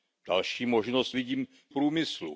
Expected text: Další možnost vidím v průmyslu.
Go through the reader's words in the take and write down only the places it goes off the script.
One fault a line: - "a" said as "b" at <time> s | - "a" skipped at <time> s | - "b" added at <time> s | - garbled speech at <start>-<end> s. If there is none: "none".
none